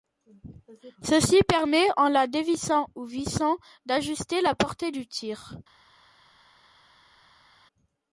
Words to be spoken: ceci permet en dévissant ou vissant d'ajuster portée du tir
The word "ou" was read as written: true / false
true